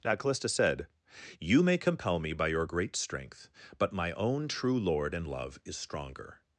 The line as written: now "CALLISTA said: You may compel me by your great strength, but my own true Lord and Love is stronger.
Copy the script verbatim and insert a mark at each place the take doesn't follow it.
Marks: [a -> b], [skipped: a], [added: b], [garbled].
now "CALLISTA said: You may compel me by your great strength, but my own true Lord and Love is stronger.